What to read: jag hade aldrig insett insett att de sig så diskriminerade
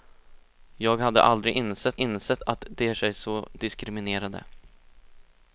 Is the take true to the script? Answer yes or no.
yes